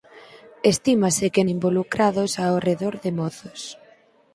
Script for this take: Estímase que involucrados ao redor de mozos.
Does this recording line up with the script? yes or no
yes